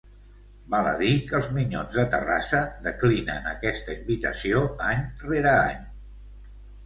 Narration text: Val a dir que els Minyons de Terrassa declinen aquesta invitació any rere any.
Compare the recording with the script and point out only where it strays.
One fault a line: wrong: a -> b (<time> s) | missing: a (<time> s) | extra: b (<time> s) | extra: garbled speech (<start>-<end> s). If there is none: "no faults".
no faults